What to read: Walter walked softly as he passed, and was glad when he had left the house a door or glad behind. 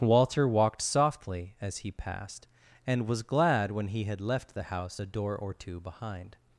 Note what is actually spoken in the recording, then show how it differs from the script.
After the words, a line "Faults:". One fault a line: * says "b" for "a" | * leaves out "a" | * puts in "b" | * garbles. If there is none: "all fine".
Walter walked softly as he passed, and was glad when he had left the house a door or two behind.
Faults:
* says "two" for "glad"